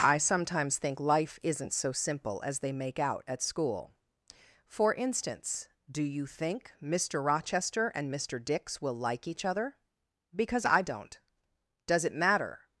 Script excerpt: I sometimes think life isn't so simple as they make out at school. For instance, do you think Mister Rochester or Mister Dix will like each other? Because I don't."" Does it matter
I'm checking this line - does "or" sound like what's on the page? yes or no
no